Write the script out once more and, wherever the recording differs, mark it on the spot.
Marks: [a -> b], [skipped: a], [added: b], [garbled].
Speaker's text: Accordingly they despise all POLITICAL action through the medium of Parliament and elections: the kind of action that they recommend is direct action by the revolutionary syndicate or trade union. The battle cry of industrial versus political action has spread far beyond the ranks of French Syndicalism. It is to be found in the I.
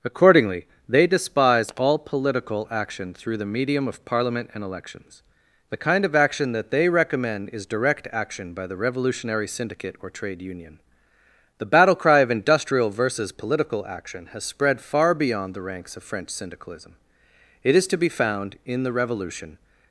Accordingly they despise all POLITICAL action through the medium of Parliament and elections: the kind of action that they recommend is direct action by the revolutionary syndicate or trade union. The battle cry of industrial versus political action has spread far beyond the ranks of French Syndicalism. It is to be found in the [I. -> revolution]